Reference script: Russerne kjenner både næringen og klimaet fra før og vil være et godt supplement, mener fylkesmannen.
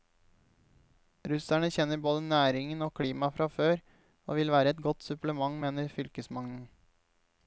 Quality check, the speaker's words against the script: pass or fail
pass